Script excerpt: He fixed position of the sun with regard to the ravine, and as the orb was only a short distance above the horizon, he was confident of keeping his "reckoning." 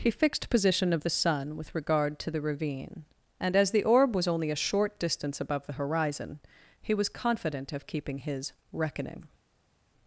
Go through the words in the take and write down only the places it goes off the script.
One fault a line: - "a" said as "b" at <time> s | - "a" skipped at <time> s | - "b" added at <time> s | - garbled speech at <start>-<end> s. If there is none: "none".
none